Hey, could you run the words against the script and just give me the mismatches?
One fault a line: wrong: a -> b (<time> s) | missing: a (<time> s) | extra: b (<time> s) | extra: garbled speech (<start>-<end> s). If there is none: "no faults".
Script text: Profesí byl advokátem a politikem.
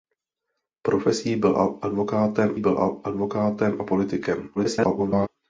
extra: byl advokátem (2.6 s)
extra: garbled speech (4.6-5.3 s)